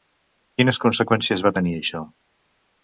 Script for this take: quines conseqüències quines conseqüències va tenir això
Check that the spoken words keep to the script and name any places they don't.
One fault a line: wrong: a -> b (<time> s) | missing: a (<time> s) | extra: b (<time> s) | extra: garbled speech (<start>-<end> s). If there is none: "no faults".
missing: quines conseqüències (1.5 s)